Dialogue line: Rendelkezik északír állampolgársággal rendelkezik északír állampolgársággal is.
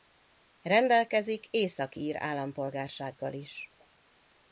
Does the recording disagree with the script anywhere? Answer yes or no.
yes